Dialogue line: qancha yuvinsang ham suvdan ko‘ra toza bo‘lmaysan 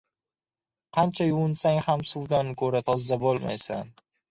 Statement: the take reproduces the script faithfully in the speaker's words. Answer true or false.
true